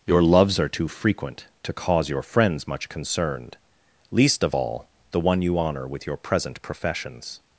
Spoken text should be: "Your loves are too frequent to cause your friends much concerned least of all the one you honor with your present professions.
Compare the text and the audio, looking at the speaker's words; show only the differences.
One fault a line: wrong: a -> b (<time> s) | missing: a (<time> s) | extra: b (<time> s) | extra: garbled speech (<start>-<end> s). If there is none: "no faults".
no faults